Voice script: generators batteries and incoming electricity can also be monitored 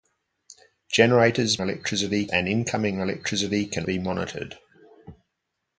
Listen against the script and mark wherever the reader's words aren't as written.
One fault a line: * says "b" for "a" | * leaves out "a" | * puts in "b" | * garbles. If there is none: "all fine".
* says "electricity" for "batteries"
* leaves out "also"